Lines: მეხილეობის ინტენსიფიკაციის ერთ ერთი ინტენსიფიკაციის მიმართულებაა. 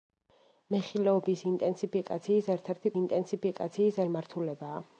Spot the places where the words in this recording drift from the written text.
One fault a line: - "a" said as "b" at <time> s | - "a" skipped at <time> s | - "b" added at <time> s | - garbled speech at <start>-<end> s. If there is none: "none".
none